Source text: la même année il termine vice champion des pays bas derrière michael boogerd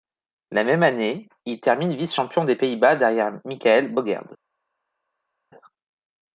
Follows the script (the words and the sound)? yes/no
yes